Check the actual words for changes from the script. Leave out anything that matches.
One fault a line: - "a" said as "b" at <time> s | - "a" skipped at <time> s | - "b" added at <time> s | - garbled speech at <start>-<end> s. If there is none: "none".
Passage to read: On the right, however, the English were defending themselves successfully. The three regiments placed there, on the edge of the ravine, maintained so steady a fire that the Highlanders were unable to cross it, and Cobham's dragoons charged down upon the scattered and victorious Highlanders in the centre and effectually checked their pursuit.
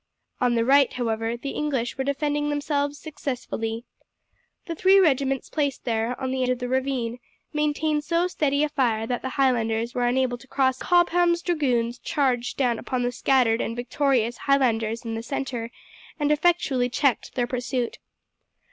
- "edge" skipped at 6.4 s
- "it and" skipped at 10.8 s